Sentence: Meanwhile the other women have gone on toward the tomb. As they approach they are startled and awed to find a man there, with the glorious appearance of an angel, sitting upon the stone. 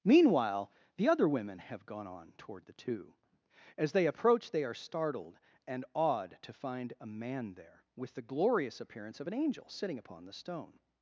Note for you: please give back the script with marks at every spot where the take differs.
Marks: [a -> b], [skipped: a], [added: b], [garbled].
Meanwhile the other women have gone on toward the [tomb. -> two] As they approach they are startled and awed to find a man there, with the glorious appearance of an angel, sitting upon the stone.